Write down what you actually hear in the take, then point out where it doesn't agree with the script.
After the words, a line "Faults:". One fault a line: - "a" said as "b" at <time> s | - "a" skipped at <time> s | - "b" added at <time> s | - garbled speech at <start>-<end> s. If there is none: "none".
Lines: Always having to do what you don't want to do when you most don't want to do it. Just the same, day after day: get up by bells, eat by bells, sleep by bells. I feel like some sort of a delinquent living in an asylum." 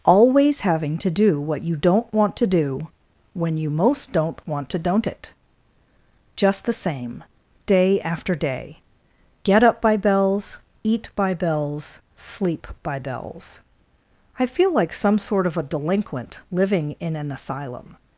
Always having to do what you don't want to do when you most don't want to don't it. Just the same, day after day: get up by bells, eat by bells, sleep by bells. I feel like some sort of a delinquent living in an asylum."
Faults:
- "do" said as "don't" at 4.8 s